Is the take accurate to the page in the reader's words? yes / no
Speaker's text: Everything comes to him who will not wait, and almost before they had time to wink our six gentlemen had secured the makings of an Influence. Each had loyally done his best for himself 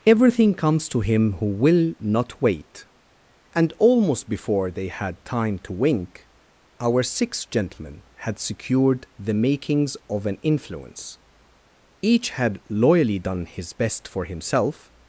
yes